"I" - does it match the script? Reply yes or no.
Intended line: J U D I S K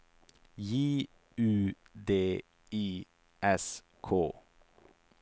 yes